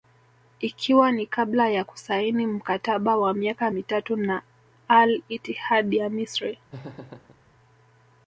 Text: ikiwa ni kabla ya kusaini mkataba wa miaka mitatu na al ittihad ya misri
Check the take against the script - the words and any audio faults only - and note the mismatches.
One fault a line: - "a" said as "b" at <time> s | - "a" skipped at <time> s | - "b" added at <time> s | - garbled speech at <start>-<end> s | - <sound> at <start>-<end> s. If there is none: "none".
- laugh at 6.7-7.4 s